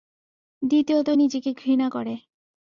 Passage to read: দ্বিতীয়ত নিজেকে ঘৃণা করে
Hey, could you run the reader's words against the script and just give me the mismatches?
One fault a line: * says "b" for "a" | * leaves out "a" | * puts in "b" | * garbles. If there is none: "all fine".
all fine